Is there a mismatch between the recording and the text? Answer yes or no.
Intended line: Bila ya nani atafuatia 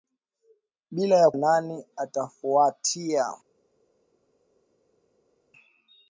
no